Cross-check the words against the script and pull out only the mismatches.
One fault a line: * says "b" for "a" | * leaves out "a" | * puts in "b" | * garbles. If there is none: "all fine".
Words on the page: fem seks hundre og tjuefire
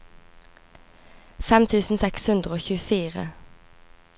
* puts in "tusen"